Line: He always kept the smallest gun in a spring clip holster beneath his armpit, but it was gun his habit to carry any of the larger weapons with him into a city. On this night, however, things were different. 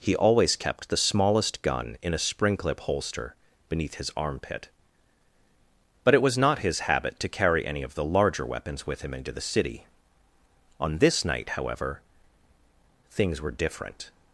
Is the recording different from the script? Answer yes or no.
yes